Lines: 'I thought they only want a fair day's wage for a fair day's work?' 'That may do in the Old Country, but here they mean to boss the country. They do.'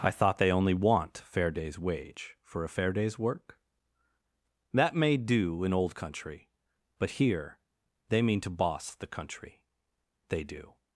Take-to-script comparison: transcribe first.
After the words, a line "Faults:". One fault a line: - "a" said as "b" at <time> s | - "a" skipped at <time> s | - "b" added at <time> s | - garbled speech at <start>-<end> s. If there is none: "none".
'I thought they only want fair day's wage for a fair day's work?' 'That may do in Old Country, but here they mean to boss the country. They do.'
Faults:
- "a" skipped at 1.2 s
- "the" skipped at 5.7 s